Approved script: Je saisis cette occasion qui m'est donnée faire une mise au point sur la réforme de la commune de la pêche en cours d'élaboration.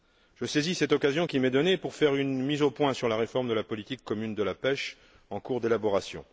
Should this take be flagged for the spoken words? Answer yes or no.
yes